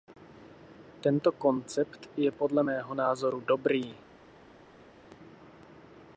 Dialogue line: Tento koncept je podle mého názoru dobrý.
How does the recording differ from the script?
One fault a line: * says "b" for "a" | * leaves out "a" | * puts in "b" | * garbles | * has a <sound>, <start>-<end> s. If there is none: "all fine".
all fine